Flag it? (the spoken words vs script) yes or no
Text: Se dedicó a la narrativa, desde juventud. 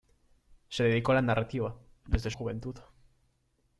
no